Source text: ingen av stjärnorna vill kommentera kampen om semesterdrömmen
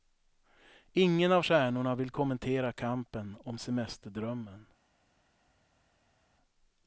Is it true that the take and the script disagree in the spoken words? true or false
false